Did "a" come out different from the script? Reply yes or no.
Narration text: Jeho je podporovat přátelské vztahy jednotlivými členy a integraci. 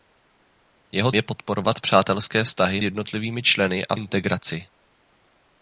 no